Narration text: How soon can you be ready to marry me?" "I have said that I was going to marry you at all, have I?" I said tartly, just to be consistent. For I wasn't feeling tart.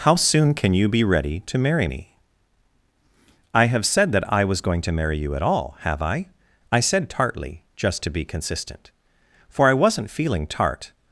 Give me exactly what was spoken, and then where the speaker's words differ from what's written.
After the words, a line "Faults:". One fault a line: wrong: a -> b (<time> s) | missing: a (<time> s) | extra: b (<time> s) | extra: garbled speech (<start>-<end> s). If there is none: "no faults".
How soon can you be ready to marry me?" "I have said that I was going to marry you at all, have I?" I said tartly, just to be consistent. For I wasn't feeling tart.
Faults:
no faults